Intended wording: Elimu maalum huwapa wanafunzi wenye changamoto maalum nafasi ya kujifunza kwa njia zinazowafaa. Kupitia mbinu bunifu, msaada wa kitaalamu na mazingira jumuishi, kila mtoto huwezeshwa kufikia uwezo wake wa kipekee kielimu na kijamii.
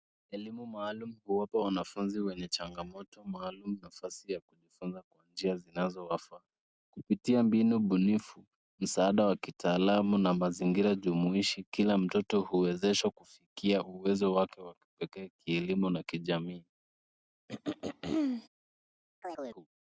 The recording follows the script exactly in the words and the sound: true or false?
false